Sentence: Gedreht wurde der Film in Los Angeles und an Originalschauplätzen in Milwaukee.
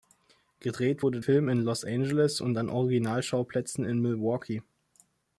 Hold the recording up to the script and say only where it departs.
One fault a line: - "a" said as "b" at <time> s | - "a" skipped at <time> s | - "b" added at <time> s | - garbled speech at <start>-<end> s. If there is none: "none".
- "der" skipped at 1.2 s